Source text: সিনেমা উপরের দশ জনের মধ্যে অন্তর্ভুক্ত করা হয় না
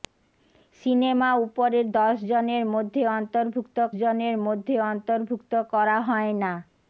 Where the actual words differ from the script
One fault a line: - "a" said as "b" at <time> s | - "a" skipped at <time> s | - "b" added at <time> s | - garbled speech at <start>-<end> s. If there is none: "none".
- "জনের মধ্যে অন্তর্ভুক্ত" added at 4.0 s